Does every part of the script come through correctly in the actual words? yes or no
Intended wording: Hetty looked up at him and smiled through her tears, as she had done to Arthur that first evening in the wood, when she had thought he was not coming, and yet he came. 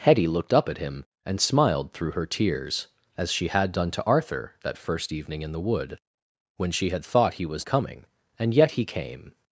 no